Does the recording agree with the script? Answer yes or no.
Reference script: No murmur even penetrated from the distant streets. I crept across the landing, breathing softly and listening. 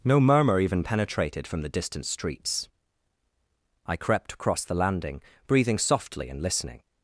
yes